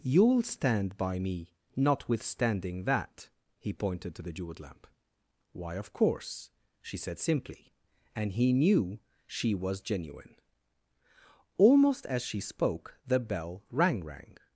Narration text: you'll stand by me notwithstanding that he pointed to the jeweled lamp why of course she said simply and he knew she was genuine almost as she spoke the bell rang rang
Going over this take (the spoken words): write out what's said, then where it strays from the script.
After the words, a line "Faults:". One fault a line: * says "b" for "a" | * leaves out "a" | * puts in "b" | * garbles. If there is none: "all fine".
you'll stand by me notwithstanding that he pointed to the jeweled lamp why of course she said simply and he knew she was genuine almost as she spoke the bell rang rang
Faults:
all fine